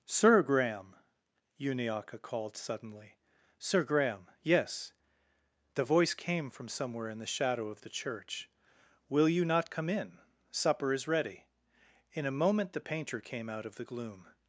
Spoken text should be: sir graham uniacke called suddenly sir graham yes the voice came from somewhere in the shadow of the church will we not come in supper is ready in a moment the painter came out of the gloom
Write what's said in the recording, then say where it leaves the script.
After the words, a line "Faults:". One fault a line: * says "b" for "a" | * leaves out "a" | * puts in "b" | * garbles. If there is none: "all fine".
sir graham uniacke called suddenly sir graham yes the voice came from somewhere in the shadow of the church will you not come in supper is ready in a moment the painter came out of the gloom
Faults:
* says "you" for "we"